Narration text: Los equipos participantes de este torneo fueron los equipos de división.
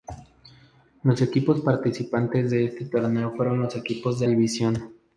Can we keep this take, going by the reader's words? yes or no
yes